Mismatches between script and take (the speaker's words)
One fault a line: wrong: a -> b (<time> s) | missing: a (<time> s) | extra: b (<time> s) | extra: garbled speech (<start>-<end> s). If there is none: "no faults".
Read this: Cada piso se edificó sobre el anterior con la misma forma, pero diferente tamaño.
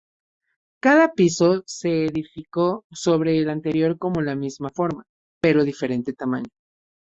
no faults